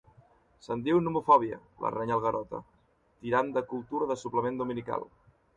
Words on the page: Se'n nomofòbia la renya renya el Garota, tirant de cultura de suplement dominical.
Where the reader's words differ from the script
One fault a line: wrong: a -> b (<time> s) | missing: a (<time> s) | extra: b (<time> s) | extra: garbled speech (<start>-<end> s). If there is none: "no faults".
extra: diu (0.9 s)
missing: renya (2.2 s)